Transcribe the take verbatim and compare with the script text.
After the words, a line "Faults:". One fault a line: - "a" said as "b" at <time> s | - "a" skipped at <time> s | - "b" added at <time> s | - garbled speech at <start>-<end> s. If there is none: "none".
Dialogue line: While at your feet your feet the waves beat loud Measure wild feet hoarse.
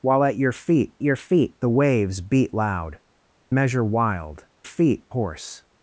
While at your feet your feet the waves beat loud Measure wild feet hoarse.
Faults:
none